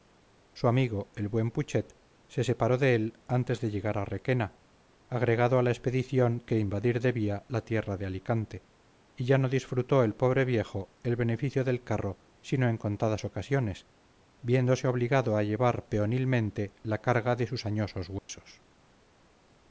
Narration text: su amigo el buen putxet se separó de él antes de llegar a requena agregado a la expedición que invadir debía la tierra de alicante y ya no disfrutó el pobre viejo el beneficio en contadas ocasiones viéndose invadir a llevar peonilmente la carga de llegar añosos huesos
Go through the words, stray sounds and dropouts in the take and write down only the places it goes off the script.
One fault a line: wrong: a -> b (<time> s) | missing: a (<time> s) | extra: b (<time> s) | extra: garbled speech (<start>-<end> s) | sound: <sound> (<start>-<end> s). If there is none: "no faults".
extra: del carro sino (11.6 s)
wrong: invadir -> obligado (14.9 s)
wrong: llegar -> sus (17.4 s)
sound: dropout (18.2-18.3 s)